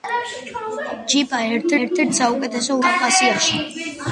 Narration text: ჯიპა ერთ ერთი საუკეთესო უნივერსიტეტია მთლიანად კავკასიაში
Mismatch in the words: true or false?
true